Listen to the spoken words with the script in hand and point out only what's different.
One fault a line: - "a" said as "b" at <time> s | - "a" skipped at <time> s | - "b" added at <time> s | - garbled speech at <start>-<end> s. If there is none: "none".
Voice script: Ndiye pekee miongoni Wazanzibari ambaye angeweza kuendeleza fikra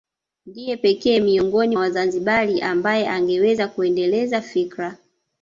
none